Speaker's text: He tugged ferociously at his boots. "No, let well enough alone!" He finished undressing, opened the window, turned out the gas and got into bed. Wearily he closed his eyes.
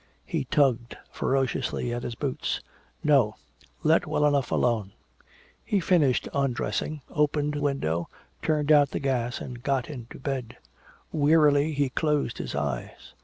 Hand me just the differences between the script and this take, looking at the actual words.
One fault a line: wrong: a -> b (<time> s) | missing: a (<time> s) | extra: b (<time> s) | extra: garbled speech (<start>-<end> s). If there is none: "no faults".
missing: the (7.5 s)